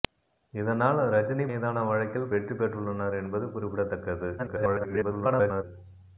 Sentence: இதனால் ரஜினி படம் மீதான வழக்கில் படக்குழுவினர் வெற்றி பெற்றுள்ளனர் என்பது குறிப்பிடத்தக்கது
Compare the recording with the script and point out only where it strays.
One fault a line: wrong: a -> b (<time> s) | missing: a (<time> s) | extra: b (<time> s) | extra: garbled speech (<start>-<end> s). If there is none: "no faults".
missing: படம் (1.4 s)
missing: படக்குழுவினர் (2.3 s)
extra: garbled speech (4.4-5.6 s)